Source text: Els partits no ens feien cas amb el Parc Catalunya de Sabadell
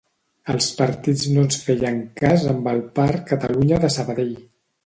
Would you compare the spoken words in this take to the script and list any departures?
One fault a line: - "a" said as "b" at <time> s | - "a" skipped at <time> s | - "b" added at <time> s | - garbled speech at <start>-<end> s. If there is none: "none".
none